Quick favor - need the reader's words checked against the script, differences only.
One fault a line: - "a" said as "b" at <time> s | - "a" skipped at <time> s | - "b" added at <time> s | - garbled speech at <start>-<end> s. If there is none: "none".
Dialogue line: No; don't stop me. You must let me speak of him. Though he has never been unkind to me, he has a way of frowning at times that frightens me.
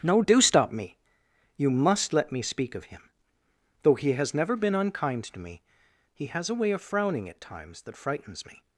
- "don't" said as "do" at 0.2 s